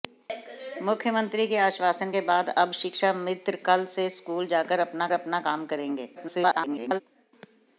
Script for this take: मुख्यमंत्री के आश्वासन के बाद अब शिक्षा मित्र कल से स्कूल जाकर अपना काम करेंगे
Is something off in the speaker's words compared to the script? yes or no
yes